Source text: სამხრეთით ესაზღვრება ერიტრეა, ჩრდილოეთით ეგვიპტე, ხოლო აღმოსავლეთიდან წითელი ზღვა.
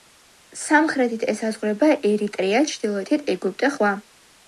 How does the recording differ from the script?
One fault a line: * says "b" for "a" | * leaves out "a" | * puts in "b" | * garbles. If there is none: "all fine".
* leaves out "ხოლო აღმოსავლეთიდან წითელი"